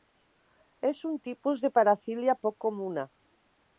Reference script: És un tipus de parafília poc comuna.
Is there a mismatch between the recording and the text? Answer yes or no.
no